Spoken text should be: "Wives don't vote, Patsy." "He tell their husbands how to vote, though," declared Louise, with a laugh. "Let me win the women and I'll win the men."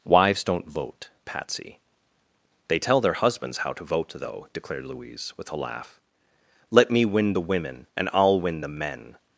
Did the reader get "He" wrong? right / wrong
wrong